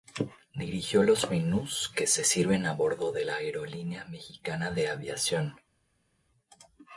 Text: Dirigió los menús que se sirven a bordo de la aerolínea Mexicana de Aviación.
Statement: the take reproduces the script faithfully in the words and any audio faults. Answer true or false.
true